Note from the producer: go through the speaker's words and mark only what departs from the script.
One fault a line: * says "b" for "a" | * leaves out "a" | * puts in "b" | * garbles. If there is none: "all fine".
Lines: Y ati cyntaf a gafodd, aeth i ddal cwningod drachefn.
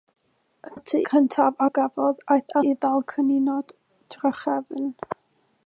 all fine